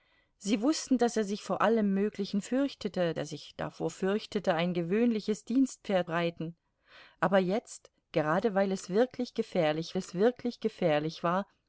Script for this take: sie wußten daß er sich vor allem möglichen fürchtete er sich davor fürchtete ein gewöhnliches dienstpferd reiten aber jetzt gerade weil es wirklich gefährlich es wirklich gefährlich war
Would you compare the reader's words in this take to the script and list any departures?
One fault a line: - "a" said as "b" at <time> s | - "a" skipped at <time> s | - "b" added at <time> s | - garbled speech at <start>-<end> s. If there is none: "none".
none